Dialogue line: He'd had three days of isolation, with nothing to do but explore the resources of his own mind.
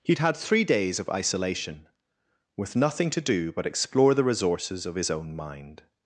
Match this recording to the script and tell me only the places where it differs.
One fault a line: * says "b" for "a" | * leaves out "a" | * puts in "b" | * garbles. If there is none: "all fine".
all fine